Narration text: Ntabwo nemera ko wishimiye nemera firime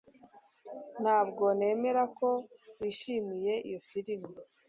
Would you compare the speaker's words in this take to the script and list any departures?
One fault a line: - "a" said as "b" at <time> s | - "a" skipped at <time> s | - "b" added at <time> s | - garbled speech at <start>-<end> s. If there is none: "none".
- "nemera" said as "iyo" at 3.7 s